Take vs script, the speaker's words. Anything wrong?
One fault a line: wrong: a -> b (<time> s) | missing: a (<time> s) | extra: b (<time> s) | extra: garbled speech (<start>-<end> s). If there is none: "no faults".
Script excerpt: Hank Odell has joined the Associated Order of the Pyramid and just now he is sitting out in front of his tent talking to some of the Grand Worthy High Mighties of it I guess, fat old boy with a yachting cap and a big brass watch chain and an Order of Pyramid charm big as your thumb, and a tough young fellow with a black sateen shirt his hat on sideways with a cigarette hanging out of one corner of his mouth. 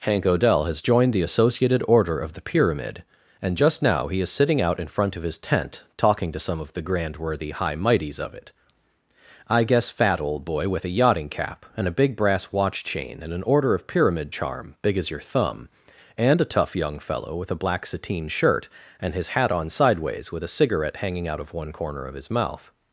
extra: and (19.0 s)